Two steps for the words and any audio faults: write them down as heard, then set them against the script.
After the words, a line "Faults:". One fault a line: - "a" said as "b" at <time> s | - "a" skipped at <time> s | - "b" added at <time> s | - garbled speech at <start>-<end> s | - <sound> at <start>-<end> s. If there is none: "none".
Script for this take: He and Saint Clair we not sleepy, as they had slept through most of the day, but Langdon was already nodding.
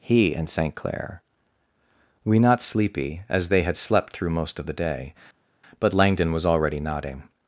He and Saint Clair we not sleepy, as they had slept through most of the day, but Langdon was already nodding.
Faults:
none